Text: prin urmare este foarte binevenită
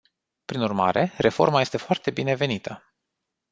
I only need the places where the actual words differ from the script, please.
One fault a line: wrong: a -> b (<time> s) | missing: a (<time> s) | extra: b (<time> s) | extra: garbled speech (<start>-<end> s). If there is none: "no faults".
extra: reforma (1.2 s)